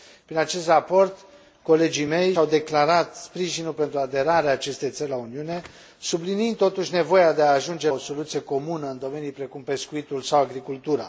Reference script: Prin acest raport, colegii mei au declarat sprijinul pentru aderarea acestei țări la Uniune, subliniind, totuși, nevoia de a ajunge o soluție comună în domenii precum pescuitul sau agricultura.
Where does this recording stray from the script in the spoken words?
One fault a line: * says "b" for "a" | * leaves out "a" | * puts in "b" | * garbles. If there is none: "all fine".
all fine